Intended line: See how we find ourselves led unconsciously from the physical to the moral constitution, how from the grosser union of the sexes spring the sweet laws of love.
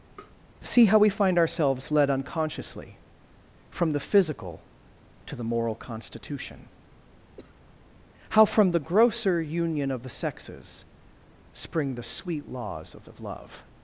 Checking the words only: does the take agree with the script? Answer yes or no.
no